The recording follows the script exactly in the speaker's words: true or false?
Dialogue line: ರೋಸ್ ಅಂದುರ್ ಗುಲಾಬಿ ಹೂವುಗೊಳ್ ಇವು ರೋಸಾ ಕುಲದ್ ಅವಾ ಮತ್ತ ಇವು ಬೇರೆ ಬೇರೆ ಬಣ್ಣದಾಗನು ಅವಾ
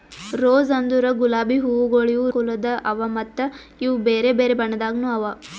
false